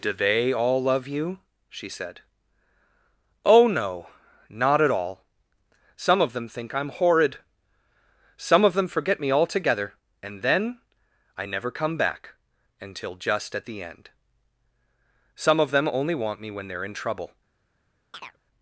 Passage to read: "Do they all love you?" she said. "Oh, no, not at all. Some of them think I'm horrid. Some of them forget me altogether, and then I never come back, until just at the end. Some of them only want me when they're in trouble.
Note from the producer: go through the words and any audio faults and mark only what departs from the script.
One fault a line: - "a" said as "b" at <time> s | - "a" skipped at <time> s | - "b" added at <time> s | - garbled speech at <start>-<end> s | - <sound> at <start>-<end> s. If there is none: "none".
- chirp at 18.1-18.4 s